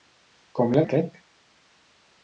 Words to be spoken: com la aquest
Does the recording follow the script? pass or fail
pass